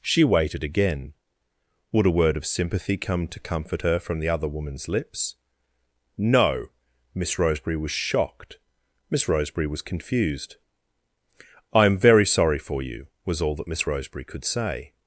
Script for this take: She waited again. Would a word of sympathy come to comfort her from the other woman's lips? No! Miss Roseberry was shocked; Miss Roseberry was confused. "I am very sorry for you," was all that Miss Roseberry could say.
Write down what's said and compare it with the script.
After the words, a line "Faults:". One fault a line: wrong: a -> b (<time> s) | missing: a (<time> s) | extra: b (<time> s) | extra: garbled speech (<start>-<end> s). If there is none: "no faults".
She waited again. Would a word of sympathy come to comfort her from the other woman's lips? No! Miss Roseberry was shocked; Miss Roseberry was confused. "I am very sorry for you," was all that Miss Roseberry could say.
Faults:
no faults